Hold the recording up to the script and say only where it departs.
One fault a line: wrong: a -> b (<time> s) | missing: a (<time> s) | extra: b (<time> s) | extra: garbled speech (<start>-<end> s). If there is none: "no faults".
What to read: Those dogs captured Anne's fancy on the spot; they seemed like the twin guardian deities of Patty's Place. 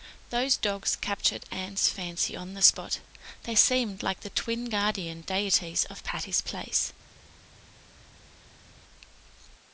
no faults